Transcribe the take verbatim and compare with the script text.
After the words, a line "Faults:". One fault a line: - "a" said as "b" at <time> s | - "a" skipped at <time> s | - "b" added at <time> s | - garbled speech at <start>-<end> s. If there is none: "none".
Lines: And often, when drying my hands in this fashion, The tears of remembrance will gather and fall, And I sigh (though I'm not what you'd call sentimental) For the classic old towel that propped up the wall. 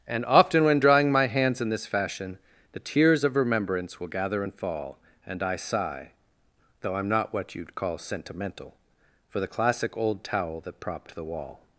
And often, when drying my hands in this fashion, The tears of remembrance will gather and fall, And I sigh (though I'm not what you'd call sentimental) For the classic old towel that propped the wall.
Faults:
- "up" skipped at 11.1 s